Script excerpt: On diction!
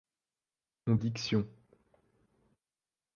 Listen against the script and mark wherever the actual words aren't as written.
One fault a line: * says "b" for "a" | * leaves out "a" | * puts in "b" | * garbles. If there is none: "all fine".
all fine